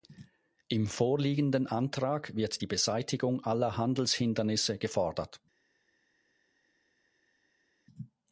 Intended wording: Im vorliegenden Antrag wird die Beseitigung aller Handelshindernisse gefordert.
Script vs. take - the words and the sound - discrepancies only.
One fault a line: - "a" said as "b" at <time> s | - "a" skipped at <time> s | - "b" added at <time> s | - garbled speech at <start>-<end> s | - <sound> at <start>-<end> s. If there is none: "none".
none